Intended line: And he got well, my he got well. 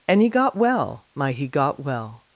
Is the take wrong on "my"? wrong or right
right